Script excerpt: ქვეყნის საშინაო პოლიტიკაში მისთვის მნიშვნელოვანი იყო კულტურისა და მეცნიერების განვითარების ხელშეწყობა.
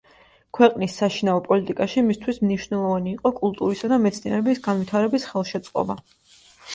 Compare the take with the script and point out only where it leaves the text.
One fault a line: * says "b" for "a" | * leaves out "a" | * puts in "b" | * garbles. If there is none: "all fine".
all fine